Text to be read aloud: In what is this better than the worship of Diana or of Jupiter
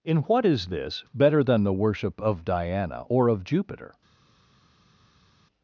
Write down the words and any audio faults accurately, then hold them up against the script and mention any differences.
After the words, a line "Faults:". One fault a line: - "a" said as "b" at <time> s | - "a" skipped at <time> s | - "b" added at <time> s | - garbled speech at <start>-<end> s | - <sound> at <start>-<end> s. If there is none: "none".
In what is this better than the worship of Diana or of Jupiter
Faults:
none